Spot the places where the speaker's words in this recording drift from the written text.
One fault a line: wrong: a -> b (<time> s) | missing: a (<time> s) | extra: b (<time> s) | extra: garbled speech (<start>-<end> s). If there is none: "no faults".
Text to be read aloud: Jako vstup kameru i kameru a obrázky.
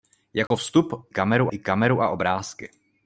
no faults